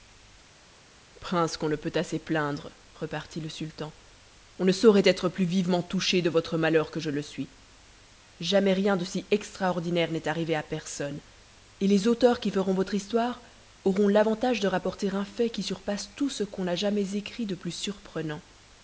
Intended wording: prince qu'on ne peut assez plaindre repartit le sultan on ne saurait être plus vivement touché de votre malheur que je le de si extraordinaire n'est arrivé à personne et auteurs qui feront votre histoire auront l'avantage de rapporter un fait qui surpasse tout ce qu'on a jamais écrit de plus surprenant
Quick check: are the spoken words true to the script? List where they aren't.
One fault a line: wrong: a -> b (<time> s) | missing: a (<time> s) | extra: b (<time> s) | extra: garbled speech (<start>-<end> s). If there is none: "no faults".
extra: suis jamais rien (7.2 s)
extra: les (11.9 s)